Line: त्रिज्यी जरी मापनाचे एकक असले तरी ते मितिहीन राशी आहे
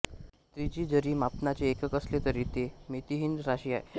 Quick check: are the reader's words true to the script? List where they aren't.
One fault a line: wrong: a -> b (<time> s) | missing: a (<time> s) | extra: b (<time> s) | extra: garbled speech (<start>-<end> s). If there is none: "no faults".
no faults